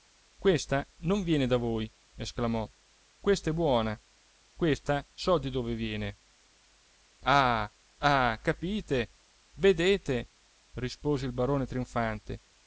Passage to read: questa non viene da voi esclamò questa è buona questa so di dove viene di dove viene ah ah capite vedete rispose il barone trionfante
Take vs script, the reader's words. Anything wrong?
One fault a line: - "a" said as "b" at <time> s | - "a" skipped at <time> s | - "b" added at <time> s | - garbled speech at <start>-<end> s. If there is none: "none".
- "di dove viene" skipped at 6.2 s